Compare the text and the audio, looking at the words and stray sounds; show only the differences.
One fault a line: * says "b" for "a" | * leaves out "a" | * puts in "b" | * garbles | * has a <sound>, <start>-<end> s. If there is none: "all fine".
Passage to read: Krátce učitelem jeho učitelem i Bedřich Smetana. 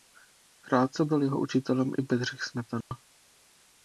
* says "byl" for "učitelem"
* has a dropout, 2.8-2.9 s